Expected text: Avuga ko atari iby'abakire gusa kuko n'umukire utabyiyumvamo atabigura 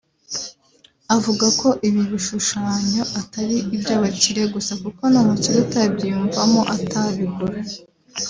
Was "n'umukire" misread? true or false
false